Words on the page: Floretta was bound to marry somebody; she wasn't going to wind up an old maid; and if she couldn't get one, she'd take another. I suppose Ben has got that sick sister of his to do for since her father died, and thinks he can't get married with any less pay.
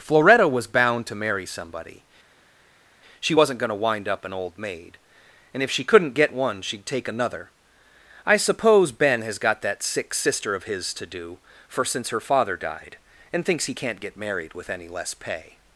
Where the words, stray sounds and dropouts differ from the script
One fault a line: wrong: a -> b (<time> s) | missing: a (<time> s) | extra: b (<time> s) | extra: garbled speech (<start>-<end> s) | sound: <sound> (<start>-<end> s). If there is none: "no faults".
no faults